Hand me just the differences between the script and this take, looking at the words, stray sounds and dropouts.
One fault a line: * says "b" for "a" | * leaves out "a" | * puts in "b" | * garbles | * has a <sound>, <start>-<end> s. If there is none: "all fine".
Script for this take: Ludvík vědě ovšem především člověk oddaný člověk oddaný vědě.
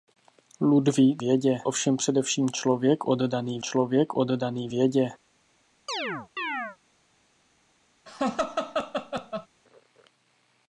* has a chirp, 5.9-6.8 s
* has a laugh, 8.1-9.5 s